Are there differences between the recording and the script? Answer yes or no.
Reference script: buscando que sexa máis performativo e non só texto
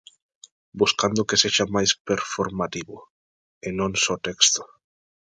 no